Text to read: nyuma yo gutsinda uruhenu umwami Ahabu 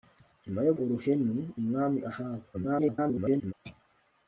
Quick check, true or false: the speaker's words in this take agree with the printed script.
false